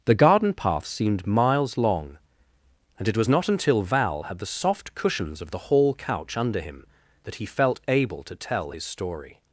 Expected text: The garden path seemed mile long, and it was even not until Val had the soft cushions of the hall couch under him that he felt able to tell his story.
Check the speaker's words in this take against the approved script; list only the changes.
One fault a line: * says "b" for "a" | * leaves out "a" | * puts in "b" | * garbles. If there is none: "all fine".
* says "miles" for "mile"
* leaves out "even"